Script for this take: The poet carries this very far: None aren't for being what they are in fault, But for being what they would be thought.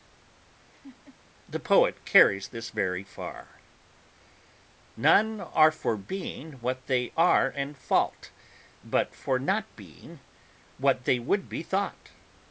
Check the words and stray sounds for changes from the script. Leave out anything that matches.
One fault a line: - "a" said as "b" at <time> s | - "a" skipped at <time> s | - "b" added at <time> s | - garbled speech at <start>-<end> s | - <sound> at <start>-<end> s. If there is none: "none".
- laugh at 0.7-1.2 s
- "aren't" said as "are" at 5.4 s
- "not" added at 9.4 s